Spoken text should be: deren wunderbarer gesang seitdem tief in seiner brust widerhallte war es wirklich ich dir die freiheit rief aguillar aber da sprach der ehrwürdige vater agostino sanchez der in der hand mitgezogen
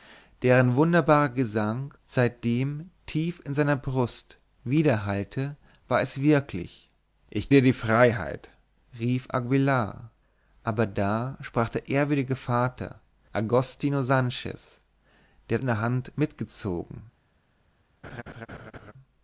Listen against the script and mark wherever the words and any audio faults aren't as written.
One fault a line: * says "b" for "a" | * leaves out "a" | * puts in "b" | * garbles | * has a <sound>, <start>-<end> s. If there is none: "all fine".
* has a laugh, 18.0-18.9 s